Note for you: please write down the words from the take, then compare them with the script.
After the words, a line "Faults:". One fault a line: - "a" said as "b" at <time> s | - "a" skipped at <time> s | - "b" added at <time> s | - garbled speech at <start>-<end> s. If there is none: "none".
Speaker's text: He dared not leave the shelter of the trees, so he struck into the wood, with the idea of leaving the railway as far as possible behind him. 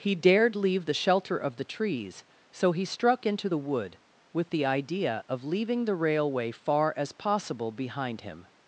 He dared leave the shelter of the trees, so he struck into the wood, with the idea of leaving the railway far as possible behind him.
Faults:
- "not" skipped at 0.6 s
- "as" skipped at 6.5 s